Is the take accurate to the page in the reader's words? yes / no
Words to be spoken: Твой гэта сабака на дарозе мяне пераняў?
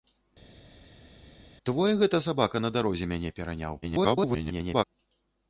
no